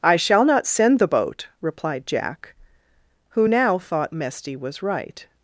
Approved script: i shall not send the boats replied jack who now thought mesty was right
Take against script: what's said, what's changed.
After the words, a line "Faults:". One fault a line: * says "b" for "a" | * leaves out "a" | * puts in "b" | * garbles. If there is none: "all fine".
i shall not send the boat replied jack who now thought mesty was right
Faults:
* says "boat" for "boats"